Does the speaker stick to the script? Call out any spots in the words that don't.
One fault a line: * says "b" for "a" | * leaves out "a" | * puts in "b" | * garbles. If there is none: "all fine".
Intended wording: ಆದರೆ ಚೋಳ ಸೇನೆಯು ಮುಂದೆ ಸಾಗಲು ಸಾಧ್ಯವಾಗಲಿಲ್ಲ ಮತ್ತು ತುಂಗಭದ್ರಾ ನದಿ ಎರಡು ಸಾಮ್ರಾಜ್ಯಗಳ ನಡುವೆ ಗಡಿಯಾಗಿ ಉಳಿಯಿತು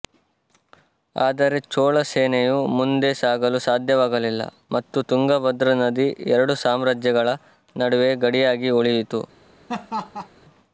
all fine